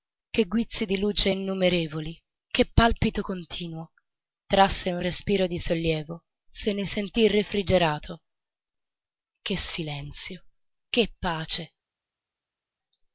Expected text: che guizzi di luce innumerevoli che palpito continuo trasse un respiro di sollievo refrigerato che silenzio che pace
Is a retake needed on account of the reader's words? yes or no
yes